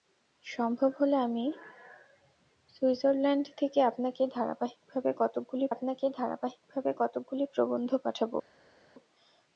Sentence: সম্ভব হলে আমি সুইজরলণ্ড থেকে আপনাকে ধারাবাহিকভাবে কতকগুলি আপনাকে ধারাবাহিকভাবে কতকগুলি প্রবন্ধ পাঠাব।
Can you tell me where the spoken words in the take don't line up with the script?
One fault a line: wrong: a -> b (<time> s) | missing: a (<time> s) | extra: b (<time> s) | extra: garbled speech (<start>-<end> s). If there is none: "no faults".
no faults